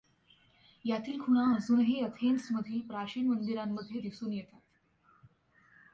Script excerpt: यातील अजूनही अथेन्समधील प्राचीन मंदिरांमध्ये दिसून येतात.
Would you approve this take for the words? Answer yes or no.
no